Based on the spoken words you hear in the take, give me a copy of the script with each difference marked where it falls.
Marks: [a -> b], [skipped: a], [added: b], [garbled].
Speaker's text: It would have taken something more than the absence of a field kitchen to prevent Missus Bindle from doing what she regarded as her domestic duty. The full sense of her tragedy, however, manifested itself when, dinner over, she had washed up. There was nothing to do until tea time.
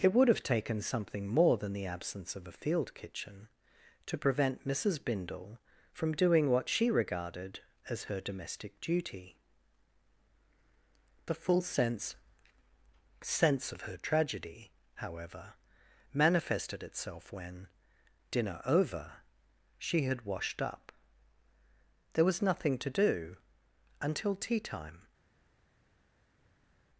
It would have taken something more than the absence of a field kitchen to prevent Missus Bindle from doing what she regarded as her domestic duty. The full sense [added: sense] of her tragedy, however, manifested itself when, dinner over, she had washed up. There was nothing to do until tea time.